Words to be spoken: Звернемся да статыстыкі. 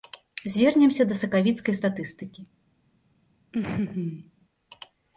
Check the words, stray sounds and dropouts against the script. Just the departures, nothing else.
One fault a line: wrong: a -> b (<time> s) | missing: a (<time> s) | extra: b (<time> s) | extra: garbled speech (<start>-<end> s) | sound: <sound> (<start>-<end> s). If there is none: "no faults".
extra: сакавіцкай (1.2 s)
sound: laugh (3.5-4.3 s)